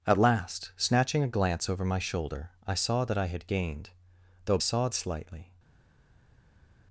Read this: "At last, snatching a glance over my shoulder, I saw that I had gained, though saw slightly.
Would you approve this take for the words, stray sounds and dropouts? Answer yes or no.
yes